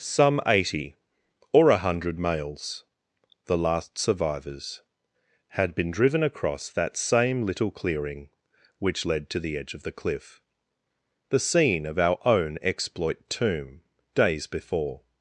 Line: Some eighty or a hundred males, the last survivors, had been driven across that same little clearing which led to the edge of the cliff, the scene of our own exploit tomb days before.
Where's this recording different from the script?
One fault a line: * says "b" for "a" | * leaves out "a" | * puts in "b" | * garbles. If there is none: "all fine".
all fine